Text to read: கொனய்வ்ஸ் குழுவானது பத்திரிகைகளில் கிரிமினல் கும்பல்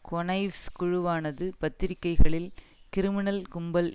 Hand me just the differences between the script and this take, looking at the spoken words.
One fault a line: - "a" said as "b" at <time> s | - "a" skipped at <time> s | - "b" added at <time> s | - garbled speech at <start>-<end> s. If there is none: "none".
none